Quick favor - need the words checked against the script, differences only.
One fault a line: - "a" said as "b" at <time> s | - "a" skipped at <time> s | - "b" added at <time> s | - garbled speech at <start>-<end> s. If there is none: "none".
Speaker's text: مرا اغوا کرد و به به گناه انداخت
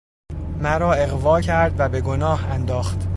- "به" skipped at 2.0 s